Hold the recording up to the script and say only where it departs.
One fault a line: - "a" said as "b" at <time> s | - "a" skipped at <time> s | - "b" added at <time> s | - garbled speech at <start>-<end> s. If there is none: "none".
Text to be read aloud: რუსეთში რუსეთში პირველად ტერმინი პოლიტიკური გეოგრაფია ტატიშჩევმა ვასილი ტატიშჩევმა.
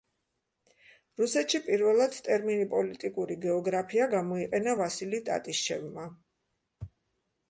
- "რუსეთში" skipped at 1.6 s
- "ტატიშჩევმა" said as "გამოიყენა" at 4.1 s